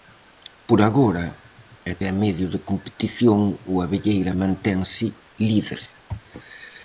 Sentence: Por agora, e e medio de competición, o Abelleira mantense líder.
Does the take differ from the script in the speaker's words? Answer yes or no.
no